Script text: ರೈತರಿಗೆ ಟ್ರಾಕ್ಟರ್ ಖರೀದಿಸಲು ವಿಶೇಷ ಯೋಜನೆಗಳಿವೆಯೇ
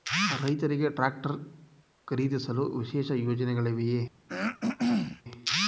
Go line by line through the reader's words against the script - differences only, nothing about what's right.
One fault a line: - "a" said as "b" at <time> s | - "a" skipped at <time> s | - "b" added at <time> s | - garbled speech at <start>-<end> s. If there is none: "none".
none